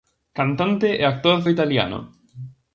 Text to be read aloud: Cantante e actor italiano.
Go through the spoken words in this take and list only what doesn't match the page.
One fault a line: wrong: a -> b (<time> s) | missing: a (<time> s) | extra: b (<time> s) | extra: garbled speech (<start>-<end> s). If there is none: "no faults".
no faults